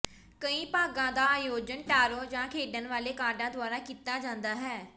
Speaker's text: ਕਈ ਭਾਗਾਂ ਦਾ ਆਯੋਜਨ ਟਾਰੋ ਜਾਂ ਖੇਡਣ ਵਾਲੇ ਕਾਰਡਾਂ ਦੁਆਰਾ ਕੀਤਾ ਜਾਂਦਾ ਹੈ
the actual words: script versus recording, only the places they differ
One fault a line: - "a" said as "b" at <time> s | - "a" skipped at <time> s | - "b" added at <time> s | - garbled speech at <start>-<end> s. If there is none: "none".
none